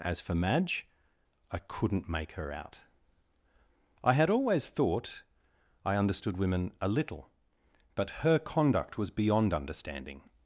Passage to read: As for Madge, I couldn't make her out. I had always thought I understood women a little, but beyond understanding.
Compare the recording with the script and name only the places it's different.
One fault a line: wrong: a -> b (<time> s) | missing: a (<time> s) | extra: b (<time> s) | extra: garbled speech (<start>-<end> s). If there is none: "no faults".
extra: her conduct was (8.2 s)